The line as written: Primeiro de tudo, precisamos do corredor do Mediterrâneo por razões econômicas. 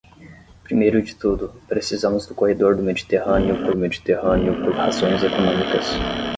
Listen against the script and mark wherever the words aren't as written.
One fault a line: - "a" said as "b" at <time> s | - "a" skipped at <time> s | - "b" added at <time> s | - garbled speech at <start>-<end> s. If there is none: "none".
- "Mediterrâneo por" added at 3.8 s